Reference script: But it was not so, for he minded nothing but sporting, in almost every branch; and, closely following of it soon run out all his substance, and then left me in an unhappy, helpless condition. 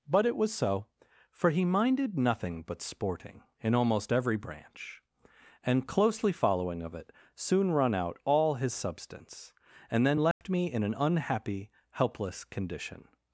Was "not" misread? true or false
true